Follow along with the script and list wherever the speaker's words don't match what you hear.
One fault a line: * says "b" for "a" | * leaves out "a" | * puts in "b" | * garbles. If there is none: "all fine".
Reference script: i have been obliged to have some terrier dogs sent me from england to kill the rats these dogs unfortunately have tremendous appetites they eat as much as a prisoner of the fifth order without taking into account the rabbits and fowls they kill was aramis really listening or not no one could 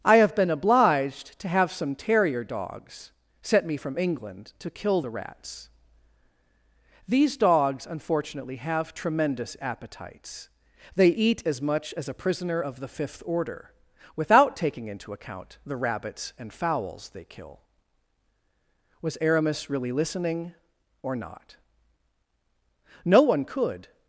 all fine